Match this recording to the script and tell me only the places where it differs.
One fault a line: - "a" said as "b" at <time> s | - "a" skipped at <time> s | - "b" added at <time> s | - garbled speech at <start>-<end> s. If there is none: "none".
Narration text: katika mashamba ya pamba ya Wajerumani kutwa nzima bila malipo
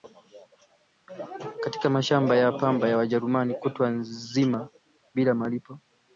none